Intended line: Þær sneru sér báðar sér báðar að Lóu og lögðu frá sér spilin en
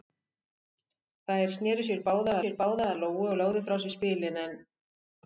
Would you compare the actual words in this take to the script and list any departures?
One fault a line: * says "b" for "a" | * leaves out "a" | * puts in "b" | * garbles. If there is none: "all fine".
all fine